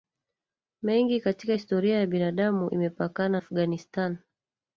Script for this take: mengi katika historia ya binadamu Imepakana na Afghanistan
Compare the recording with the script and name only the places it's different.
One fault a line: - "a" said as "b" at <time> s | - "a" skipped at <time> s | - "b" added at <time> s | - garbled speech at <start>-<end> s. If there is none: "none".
- "na" skipped at 3.4 s